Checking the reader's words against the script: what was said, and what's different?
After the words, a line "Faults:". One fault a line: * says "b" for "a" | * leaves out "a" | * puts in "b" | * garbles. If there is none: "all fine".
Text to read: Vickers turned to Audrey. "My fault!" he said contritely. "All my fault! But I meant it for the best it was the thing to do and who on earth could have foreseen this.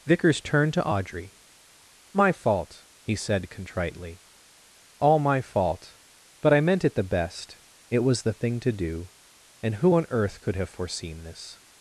Vickers turned to Audrey. "My fault!" he said contritely. "All my fault! But I meant it the best it was the thing to do and who on earth could have foreseen this.
Faults:
* leaves out "for"